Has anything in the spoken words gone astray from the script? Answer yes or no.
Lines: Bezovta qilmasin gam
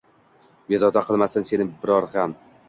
yes